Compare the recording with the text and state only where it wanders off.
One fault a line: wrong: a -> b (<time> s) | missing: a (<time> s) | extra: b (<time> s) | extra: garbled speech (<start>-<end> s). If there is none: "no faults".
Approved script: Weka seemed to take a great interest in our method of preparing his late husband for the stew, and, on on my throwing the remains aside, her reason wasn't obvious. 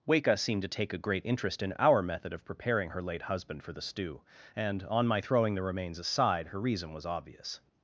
wrong: his -> her (2.9 s)
missing: on (5.1 s)
wrong: wasn't -> was (6.9 s)